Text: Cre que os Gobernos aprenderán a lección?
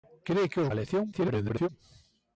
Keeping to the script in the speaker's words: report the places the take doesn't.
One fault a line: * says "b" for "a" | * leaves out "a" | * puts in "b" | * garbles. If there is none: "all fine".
* leaves out "Gobernos aprenderán"
* garbles